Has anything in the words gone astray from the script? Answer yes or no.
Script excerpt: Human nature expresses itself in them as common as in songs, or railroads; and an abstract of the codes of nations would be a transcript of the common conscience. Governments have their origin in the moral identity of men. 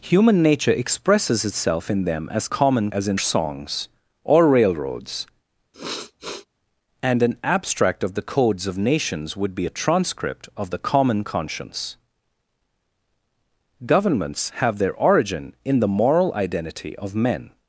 no